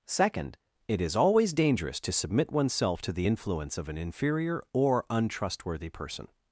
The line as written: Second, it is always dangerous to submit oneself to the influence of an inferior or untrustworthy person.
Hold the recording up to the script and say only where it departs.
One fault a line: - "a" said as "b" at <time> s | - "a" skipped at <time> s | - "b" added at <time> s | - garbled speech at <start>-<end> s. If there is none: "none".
none